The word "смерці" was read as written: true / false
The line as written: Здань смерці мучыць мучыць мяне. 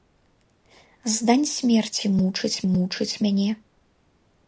true